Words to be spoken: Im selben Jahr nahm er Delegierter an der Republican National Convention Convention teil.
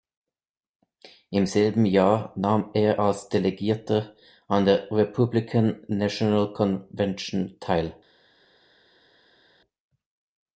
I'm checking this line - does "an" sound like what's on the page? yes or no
yes